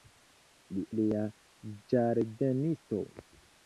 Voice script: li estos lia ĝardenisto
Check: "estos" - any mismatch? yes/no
yes